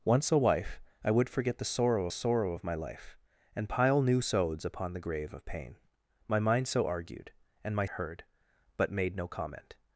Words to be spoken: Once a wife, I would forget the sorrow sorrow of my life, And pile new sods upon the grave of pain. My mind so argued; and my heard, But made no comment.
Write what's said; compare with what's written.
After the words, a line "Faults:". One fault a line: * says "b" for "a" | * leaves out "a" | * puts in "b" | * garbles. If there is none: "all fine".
Once a wife, I would forget the sorrow sorrow of my life, And pile new sods upon the grave of pain. My mind so argued; and my heard, But made no comment.
Faults:
all fine